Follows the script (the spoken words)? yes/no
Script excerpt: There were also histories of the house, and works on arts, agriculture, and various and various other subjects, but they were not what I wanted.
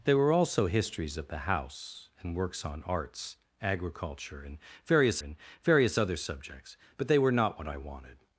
yes